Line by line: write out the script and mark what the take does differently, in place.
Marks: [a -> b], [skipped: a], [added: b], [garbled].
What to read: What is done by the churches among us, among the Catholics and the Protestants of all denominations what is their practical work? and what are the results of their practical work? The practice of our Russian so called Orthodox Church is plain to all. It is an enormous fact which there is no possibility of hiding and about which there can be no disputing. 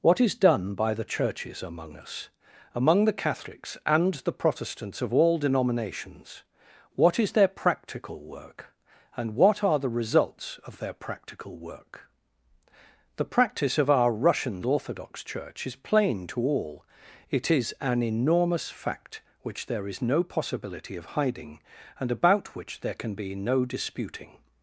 What is done by the churches among us, among the Catholics and the Protestants of all denominations what is their practical work? and what are the results of their practical work? The practice of our Russian [skipped: so called] Orthodox Church is plain to all. It is an enormous fact which there is no possibility of hiding and about which there can be no disputing.